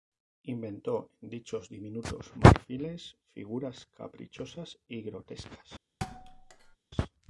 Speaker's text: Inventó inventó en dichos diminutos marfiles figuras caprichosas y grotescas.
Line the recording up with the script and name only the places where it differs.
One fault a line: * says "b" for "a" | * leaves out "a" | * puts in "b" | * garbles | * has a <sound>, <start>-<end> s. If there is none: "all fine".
* leaves out "inventó"
* has a thud, 6.0-6.8 s